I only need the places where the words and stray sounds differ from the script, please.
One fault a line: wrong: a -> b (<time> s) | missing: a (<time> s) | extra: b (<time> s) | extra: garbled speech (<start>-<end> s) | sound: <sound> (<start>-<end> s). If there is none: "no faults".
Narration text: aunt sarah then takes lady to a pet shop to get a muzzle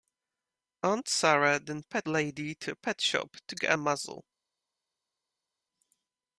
wrong: takes -> pet (1.8 s)